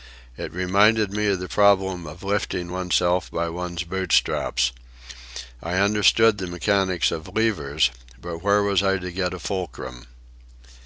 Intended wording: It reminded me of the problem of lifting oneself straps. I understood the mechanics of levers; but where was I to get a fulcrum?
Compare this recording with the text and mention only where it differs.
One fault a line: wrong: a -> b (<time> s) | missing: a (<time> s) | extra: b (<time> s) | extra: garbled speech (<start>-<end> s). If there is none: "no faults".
extra: by one's boot (3.3 s)